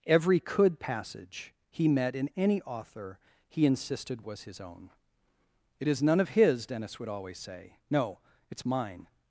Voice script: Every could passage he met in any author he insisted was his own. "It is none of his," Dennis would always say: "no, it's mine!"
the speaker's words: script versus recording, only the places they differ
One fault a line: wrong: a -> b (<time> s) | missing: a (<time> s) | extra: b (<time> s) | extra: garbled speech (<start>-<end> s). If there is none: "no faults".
no faults